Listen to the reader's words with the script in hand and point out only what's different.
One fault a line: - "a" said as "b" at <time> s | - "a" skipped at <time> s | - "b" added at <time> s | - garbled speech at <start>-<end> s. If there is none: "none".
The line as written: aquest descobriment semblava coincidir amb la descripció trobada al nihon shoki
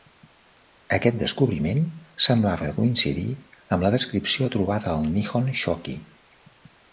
none